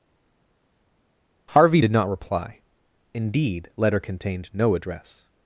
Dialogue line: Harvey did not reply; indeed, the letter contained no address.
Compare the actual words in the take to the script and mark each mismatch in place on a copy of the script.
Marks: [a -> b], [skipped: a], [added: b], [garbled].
Harvey did not reply; indeed, [skipped: the] letter contained no address.